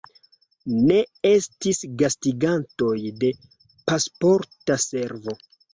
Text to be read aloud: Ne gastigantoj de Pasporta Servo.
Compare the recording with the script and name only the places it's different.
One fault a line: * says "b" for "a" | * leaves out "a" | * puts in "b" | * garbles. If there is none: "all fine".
* puts in "estis"